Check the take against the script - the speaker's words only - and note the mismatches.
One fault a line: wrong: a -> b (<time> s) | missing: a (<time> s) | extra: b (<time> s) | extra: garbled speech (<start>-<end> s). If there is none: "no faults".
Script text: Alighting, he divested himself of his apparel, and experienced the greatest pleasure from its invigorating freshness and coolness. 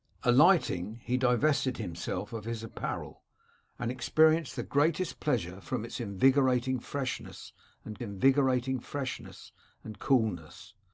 extra: invigorating freshness and (8.0 s)